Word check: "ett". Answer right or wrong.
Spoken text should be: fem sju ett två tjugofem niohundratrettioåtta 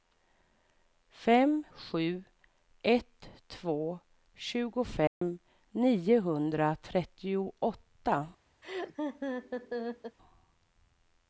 right